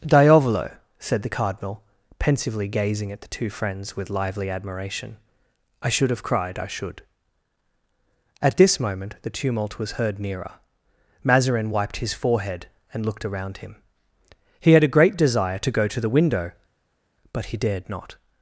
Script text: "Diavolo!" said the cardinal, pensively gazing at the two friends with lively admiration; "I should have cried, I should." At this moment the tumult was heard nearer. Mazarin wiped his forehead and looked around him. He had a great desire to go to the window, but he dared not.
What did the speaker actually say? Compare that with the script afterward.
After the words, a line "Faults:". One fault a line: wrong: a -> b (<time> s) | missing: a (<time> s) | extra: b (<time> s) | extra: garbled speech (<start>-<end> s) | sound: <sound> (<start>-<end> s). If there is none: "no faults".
"Diavolo!" said the cardinal, pensively gazing at the two friends with lively admiration; "I should have cried, I should." At this moment the tumult was heard nearer. Mazarin wiped his forehead and looked around him. He had a great desire to go to the window, but he dared not.
Faults:
no faults